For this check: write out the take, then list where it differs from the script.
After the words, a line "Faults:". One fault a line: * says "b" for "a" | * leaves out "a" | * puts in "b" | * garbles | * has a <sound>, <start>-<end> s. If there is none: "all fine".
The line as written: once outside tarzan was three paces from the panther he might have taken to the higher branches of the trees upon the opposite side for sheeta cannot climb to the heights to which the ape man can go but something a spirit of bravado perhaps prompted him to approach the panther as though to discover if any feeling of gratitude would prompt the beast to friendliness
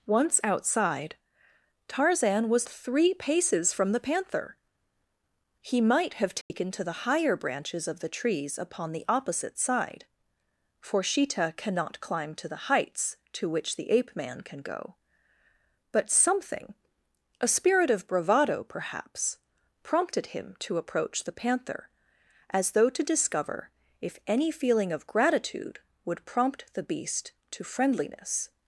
once outside tarzan was three paces from the panther he might have taken to the higher branches of the trees upon the opposite side for sheeta cannot climb to the heights to which the ape man can go but something a spirit of bravado perhaps prompted him to approach the panther as though to discover if any feeling of gratitude would prompt the beast to friendliness
Faults:
* has a dropout, 6.4-6.5 s